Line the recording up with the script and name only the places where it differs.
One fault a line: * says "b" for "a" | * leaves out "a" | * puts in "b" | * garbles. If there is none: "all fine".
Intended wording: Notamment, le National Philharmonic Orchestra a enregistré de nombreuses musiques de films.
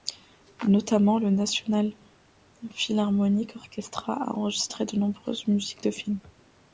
all fine